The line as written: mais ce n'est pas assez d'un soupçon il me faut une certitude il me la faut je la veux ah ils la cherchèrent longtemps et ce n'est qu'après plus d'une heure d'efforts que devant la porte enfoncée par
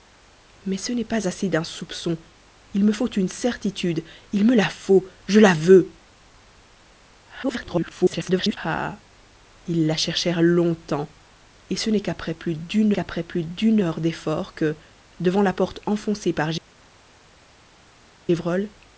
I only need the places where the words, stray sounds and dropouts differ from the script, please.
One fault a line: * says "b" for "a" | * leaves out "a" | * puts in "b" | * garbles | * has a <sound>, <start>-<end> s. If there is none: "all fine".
* garbles
* puts in "qu'après plus d'une"